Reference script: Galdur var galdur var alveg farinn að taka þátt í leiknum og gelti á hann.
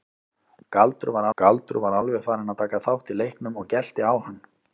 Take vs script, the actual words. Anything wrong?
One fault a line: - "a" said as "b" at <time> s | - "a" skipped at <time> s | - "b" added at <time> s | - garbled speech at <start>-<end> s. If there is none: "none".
none